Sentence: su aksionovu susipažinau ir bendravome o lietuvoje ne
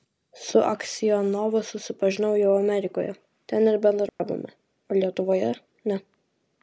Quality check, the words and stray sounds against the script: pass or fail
fail